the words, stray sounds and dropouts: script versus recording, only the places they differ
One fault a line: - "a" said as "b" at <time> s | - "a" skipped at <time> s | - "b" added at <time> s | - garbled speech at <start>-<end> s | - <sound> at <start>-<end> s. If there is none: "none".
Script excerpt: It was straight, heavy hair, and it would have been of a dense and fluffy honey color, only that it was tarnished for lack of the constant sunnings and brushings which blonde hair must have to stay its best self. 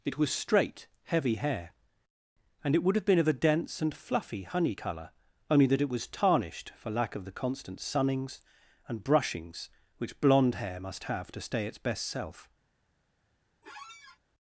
- squeak at 13.6-14.2 s